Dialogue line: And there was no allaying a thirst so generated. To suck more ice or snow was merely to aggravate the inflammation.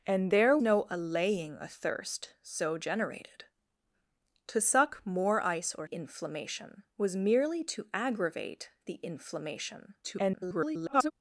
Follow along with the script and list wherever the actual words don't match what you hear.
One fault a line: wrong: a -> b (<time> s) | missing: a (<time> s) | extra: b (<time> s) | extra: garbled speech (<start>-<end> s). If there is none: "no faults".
missing: was (0.6 s)
wrong: snow -> inflammation (5.8 s)
extra: garbled speech (10.0-11.1 s)